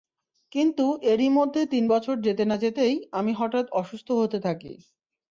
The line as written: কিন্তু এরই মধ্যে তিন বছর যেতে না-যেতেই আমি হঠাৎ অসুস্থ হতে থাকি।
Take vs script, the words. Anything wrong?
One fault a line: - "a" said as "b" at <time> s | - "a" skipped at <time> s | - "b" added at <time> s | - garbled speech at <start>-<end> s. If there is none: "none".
none